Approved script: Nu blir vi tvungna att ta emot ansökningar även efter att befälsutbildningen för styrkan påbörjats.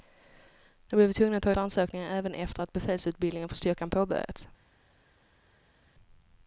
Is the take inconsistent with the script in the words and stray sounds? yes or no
yes